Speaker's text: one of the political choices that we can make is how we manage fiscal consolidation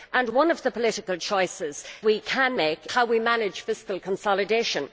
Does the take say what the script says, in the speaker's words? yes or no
no